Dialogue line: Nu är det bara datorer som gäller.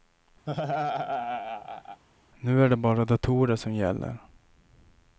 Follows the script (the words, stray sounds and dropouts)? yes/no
no